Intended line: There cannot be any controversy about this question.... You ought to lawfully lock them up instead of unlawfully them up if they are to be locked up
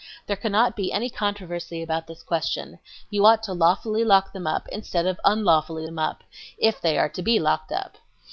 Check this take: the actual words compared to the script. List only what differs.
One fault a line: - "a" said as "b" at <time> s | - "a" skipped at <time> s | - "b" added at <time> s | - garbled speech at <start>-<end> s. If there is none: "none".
none